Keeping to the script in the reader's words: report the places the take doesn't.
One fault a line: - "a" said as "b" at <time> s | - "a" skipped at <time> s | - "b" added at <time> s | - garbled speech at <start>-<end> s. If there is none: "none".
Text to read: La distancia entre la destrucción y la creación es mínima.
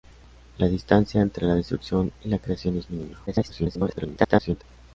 - garbled speech at 3.3-4.6 s